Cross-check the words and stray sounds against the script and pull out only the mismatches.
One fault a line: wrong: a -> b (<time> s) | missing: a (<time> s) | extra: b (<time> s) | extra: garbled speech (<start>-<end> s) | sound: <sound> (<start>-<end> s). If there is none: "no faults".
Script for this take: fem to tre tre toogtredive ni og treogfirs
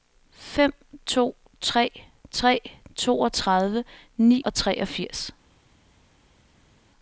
no faults